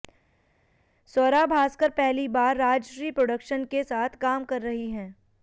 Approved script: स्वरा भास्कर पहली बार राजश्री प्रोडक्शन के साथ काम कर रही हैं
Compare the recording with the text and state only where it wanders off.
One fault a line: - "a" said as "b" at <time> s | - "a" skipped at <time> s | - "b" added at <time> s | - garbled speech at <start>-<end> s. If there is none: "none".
none